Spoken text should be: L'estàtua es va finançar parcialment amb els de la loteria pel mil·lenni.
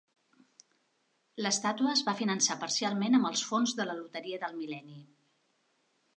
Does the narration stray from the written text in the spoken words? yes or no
yes